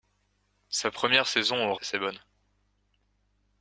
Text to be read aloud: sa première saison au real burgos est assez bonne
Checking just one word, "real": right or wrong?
wrong